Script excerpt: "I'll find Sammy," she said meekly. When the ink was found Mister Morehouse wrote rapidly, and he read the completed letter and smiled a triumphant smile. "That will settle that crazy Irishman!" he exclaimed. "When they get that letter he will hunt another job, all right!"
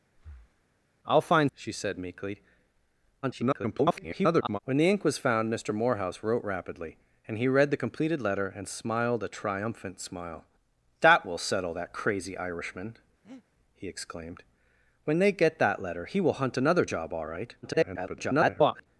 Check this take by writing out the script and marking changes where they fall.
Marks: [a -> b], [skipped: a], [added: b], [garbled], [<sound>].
[breath] "I'll find [skipped: Sammy,"] she said meekly. [garbled] When the ink was found Mister Morehouse wrote rapidly, and he read the completed letter and smiled a triumphant smile. "That will settle that crazy Irishman!" [breath] he exclaimed. "When they get that letter he will hunt another job, all right!" [garbled]